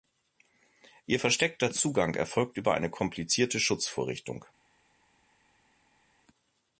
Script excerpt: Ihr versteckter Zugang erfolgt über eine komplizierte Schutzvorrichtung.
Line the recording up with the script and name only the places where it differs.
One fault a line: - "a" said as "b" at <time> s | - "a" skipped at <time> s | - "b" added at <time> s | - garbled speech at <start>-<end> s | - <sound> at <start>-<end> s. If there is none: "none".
none